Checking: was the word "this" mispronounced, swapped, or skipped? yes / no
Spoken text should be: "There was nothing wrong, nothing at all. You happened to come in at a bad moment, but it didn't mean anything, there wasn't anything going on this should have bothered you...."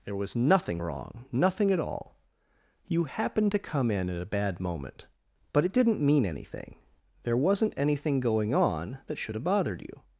yes